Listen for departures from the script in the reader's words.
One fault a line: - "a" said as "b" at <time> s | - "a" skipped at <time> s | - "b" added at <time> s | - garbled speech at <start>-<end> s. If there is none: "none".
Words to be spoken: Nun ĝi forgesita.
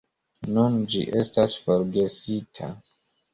- "estas" added at 1.2 s